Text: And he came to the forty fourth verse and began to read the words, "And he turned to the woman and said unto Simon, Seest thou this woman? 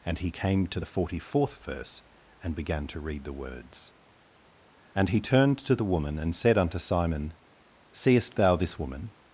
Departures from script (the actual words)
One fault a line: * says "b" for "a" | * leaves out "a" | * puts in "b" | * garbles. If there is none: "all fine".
all fine